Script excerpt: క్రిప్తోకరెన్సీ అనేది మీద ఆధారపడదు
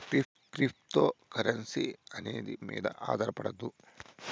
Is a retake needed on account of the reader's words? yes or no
no